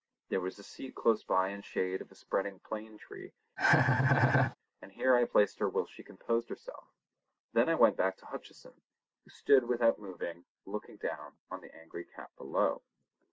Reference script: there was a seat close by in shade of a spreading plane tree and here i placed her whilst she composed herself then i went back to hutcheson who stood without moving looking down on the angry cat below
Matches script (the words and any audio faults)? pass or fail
fail